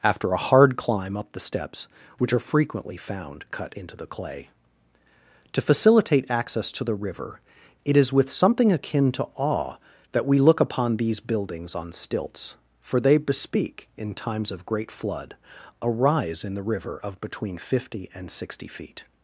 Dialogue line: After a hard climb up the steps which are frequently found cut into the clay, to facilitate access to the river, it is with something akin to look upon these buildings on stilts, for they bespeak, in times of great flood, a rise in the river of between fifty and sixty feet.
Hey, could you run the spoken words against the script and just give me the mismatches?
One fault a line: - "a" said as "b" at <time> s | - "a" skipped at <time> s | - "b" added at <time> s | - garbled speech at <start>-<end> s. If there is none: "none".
- "awe that we" added at 9.4 s